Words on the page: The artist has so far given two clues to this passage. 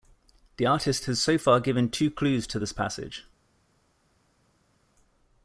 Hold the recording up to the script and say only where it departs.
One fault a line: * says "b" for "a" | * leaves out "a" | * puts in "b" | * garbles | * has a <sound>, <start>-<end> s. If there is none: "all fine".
all fine